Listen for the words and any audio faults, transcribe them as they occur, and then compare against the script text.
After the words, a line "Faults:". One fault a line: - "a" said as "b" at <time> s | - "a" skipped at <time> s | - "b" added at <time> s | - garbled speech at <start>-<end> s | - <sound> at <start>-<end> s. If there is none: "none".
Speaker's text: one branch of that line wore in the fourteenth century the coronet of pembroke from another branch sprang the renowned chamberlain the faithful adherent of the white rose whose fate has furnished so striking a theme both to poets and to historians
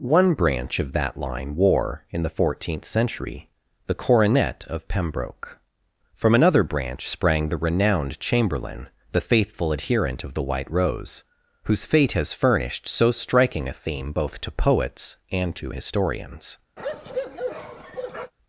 one branch of that line wore in the fourteenth century the coronet of pembroke from another branch sprang the renowned chamberlain the faithful adherent of the white rose whose fate has furnished so striking a theme both to poets and to historians
Faults:
- bark at 16.8-18.3 s